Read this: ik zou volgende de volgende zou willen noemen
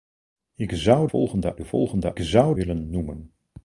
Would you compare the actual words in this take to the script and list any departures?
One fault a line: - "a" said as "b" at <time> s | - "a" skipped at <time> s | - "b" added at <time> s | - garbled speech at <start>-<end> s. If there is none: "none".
none